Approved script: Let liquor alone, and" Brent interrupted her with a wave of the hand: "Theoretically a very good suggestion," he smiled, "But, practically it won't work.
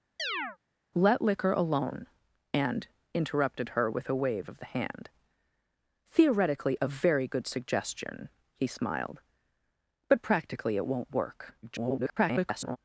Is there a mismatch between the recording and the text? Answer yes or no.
yes